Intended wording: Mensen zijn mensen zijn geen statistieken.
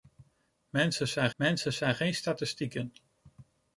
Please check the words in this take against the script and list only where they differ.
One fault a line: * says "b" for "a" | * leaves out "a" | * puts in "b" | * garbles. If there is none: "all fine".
all fine